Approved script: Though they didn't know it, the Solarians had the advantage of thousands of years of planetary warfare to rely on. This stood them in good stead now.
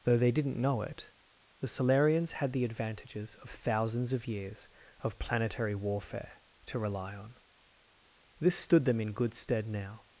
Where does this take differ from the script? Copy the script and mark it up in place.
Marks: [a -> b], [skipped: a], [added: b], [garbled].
Though they didn't know it, the Solarians had the [advantage -> advantages] of thousands of years of planetary warfare to rely on. This stood them in good stead now.